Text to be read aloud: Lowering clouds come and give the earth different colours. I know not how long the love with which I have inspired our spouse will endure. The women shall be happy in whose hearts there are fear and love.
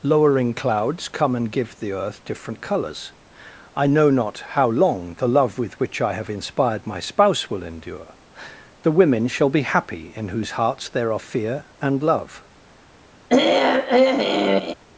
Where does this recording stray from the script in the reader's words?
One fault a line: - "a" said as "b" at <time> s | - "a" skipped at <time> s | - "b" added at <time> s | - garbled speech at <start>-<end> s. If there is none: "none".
- "our" said as "my" at 6.9 s